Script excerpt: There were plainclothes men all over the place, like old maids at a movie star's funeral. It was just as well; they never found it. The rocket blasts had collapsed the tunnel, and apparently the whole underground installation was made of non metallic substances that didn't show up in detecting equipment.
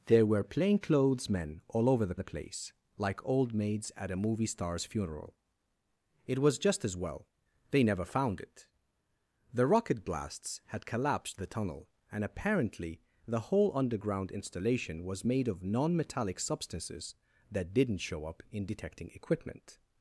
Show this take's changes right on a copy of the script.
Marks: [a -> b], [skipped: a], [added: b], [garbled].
There were plainclothes men all over the [added: the] place, like old maids at a movie star's funeral. It was just as well; they never found it. The rocket blasts had collapsed the tunnel, and apparently the whole underground installation was made of non metallic substances that didn't show up in detecting equipment.